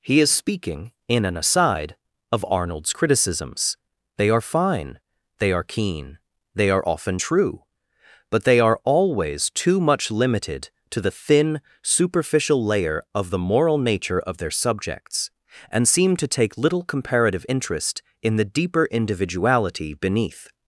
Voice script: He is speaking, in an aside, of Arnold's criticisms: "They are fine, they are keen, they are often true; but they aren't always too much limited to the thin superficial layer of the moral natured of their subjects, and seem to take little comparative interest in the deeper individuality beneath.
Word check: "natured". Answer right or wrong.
wrong